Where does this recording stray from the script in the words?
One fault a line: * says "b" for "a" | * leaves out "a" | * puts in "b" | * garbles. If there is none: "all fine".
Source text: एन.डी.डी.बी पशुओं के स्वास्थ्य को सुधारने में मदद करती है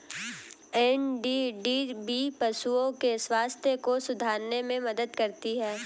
all fine